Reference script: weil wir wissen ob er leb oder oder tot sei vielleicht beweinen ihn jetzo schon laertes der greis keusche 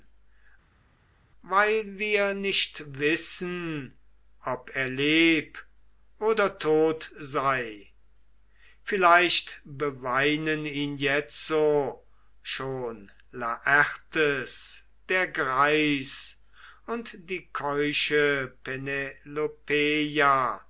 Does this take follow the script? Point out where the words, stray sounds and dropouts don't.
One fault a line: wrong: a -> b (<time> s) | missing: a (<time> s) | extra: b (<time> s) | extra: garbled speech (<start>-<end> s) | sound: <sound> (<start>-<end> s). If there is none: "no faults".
extra: nicht (2.3 s)
missing: oder (6.6 s)
extra: und die (16.9 s)